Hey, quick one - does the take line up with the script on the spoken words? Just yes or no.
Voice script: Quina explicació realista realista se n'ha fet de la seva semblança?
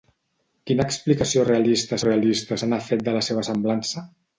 yes